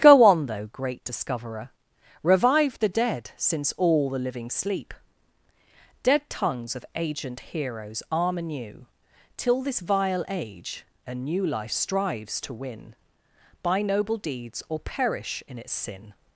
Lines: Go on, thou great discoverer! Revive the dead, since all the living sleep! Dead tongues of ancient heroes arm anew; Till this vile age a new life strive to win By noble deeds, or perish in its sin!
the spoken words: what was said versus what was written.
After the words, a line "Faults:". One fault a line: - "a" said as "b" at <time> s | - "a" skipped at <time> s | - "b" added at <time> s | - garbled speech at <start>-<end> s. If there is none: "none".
Go on, though great discoverer! Revive the dead, since all the living sleep! Dead tongues of ancient heroes arm anew; Till this vile age a new life strives to win By noble deeds, or perish in its sin!
Faults:
- "thou" said as "though" at 0.5 s
- "strive" said as "strives" at 11.7 s